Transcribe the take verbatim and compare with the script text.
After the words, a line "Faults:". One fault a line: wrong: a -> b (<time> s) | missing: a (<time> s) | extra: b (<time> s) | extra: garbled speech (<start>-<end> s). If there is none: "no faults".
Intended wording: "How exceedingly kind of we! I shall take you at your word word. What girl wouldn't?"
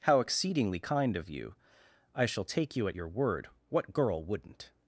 "How exceedingly kind of you! I shall take you at your word. What girl wouldn't?"
Faults:
wrong: we -> you (1.3 s)
missing: word (3.5 s)